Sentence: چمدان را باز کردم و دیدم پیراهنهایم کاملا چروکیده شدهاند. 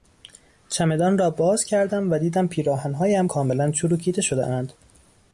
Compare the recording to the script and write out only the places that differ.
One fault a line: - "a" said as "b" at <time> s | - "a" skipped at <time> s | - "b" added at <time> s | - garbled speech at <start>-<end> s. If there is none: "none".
none